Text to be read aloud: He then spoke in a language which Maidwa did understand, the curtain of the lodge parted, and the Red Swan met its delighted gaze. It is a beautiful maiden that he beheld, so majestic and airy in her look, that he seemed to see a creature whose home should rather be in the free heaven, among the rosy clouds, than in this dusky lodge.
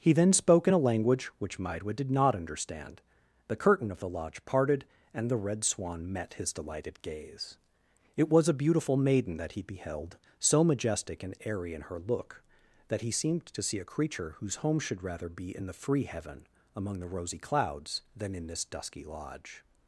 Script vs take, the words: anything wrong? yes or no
yes